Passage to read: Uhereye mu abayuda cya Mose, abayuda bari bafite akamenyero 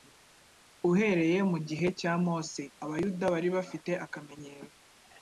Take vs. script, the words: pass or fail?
fail